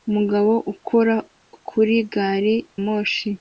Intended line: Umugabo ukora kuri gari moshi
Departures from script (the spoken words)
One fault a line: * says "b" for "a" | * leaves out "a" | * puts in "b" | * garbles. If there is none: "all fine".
all fine